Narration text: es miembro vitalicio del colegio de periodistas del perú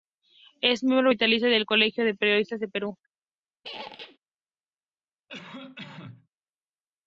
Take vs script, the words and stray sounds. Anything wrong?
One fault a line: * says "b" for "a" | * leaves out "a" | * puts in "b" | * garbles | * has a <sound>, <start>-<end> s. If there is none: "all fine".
* has a squeak, 3.6-4.2 s
* has a cough, 5.3-6.3 s